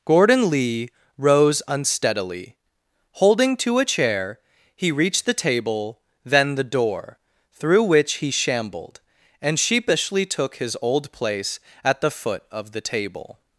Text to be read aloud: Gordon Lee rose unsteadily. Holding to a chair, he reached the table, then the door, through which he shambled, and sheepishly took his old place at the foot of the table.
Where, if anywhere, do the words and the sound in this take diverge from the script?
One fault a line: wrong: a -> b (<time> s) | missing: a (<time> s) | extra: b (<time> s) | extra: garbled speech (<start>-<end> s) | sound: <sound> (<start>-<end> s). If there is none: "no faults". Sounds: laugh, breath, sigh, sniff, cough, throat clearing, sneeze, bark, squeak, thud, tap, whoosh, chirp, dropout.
no faults